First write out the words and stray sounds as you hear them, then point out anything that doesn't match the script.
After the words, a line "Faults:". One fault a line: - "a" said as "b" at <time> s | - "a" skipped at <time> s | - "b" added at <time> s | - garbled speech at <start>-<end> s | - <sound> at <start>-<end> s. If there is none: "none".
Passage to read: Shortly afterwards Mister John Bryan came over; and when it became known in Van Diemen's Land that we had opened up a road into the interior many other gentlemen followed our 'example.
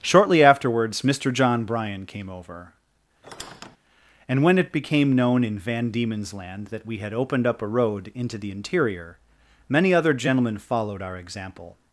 Shortly afterwards Mister John Bryan came over; and when it became known in Van Diemen's Land that we had opened up a road into the interior many other gentlemen followed our 'example.
Faults:
- squeak at 3.2-3.8 s